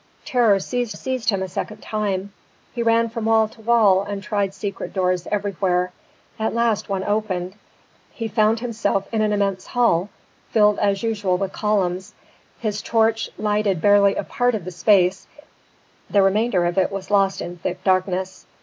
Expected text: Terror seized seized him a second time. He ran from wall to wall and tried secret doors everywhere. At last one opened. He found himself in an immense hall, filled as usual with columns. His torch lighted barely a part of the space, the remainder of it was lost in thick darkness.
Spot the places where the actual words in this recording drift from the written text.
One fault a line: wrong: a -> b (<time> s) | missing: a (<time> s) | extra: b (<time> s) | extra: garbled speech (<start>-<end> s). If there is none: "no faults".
no faults